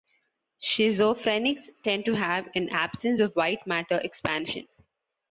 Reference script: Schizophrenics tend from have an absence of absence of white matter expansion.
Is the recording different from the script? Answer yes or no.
yes